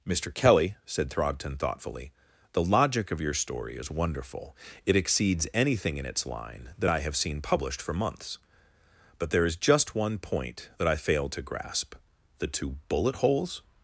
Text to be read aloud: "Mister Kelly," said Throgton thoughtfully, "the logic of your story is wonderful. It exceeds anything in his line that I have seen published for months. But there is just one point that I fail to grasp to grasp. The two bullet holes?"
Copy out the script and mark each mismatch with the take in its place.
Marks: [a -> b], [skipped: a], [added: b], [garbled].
"Mister Kelly," said Throgton thoughtfully, "the logic of your story is wonderful. It exceeds anything in [his -> its] line that I have seen published for months. But there is just one point that I fail to grasp [skipped: to grasp.] The two bullet holes?"